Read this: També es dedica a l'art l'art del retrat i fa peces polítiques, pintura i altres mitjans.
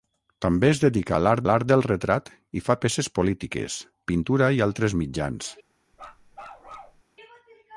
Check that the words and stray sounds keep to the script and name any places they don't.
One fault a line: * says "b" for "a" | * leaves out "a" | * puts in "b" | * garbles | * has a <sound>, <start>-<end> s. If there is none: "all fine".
* has a bark, 5.9-7.0 s